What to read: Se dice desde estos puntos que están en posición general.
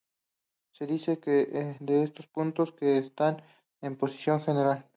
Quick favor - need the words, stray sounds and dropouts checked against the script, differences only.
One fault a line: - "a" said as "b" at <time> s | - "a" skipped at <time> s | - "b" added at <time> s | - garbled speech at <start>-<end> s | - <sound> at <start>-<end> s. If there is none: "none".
- "desde" said as "de" at 1.8 s